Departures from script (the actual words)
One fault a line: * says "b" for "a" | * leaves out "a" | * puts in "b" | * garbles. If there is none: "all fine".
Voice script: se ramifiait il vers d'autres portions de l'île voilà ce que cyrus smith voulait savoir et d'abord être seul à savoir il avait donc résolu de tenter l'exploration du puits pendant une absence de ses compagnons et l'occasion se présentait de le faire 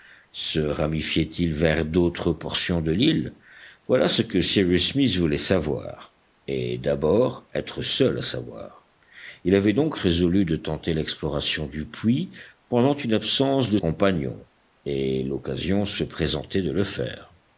* leaves out "ses"